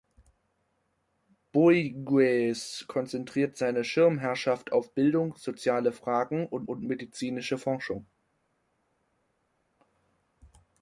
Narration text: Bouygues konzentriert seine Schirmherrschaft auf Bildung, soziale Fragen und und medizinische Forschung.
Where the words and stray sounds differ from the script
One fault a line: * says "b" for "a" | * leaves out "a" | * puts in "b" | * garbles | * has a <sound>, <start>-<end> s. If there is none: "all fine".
all fine